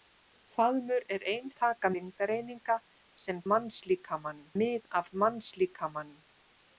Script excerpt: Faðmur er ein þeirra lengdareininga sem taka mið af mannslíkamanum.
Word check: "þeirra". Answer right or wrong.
wrong